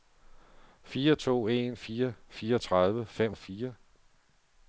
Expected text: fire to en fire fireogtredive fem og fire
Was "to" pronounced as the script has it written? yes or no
yes